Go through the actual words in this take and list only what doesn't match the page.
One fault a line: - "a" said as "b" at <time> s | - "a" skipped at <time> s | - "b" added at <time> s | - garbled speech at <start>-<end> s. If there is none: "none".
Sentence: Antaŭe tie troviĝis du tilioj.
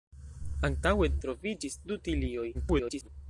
- "tie" skipped at 1.1 s
- garbled speech at 2.5-3.1 s